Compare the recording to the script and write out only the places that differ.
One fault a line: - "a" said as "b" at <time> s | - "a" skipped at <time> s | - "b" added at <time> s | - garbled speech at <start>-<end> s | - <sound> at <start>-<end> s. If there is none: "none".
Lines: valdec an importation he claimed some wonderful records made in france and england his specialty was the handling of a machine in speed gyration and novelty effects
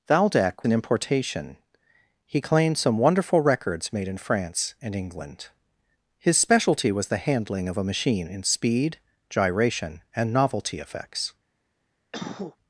- cough at 12.1-12.6 s